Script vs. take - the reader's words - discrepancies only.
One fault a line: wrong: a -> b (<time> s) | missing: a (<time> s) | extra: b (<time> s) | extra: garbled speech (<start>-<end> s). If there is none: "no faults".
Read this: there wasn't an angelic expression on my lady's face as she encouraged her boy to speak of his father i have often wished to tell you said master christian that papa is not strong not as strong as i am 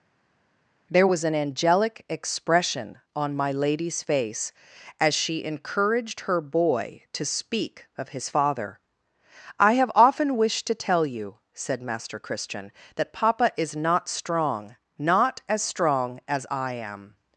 wrong: wasn't -> was (1.0 s)